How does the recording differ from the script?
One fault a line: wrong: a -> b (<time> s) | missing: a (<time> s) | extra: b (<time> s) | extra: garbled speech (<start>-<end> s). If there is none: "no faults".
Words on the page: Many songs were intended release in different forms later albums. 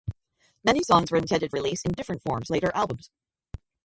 no faults